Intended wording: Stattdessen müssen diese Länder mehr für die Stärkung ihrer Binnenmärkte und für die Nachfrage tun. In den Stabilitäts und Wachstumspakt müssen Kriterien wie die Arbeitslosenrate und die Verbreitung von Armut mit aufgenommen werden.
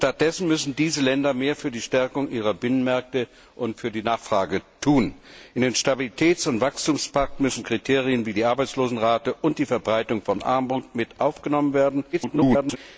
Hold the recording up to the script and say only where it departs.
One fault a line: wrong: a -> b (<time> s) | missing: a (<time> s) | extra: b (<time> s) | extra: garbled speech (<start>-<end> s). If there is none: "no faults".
extra: garbled speech (12.1-12.8 s)